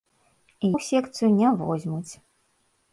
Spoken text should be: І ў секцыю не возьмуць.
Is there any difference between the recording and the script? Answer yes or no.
no